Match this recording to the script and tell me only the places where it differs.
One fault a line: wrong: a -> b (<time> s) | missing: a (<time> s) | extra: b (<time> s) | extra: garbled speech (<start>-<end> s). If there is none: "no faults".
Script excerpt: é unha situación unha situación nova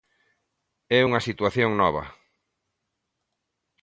missing: unha situación (1.7 s)